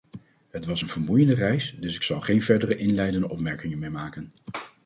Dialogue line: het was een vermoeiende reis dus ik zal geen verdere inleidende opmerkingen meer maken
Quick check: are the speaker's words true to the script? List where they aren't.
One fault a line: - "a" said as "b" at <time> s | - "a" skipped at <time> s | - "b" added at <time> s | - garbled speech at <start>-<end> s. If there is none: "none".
none